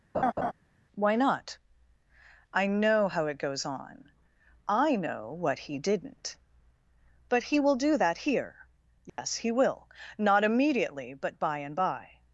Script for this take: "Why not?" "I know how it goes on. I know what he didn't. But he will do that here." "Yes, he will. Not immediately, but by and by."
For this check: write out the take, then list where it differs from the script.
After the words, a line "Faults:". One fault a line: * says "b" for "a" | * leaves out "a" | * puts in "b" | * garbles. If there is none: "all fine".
"Why not?" "I know how it goes on. I know what he didn't. But he will do that here." "Yes, he will. Not immediately, but by and by."
Faults:
all fine